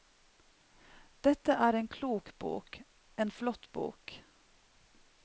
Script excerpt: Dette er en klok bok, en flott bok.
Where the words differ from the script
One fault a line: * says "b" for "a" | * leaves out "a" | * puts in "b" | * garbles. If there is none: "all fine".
all fine